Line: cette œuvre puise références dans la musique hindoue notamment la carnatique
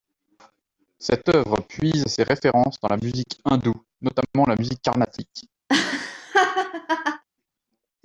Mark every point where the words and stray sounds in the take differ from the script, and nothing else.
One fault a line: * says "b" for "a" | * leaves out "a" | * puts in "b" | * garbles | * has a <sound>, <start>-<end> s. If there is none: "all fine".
* puts in "ses"
* puts in "musique"
* has a laugh, 5.7-7.2 s